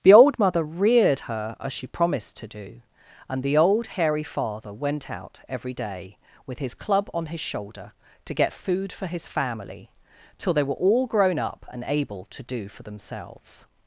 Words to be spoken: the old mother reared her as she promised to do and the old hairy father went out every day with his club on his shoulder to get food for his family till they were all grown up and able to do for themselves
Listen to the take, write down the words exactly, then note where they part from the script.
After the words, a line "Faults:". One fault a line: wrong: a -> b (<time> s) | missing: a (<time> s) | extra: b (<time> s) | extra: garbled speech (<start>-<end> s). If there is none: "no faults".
the old mother reared her as she promised to do and the old hairy father went out every day with his club on his shoulder to get food for his family till they were all grown up and able to do for themselves
Faults:
no faults